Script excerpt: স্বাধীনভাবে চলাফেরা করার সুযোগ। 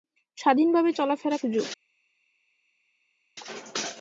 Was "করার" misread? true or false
true